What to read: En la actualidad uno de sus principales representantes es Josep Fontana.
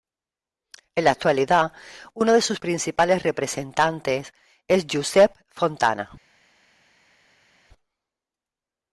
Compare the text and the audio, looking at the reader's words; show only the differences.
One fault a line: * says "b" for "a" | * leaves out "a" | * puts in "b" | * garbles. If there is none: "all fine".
all fine